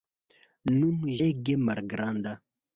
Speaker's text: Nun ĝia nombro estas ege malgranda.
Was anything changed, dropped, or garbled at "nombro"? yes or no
yes